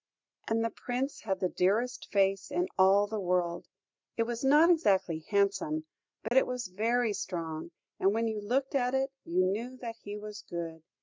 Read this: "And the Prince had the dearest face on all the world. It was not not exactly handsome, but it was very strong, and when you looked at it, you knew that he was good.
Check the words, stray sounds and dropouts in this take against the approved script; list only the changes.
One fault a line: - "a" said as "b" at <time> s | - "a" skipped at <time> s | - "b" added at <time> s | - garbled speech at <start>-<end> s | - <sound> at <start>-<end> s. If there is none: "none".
- "on" said as "in" at 2.5 s
- "not" skipped at 4.7 s
- dropout at 6.3-6.3 s